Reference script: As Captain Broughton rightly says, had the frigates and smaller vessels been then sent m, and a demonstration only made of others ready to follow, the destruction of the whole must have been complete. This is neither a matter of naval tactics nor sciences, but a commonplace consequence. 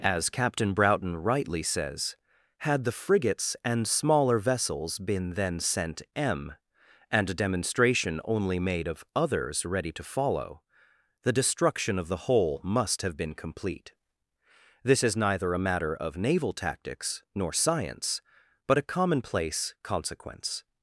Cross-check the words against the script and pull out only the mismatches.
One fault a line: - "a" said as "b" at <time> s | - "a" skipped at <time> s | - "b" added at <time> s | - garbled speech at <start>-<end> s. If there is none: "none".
- "sciences" said as "science" at 17.5 s